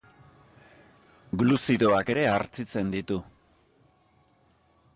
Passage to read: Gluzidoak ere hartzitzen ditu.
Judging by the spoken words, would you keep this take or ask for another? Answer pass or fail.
pass